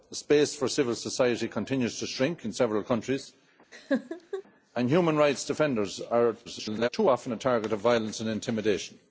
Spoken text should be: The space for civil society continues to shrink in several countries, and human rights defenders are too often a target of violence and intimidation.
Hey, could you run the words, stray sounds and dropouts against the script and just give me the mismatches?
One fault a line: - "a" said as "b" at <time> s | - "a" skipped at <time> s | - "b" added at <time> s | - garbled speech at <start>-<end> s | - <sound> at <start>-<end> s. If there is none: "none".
- laugh at 3.7-4.4 s
- garbled speech at 6.4-6.9 s